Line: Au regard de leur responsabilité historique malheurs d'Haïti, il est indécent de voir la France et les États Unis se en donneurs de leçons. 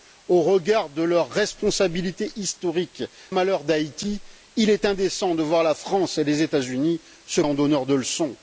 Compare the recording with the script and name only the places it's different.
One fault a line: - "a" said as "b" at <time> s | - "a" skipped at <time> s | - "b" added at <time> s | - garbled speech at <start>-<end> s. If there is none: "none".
none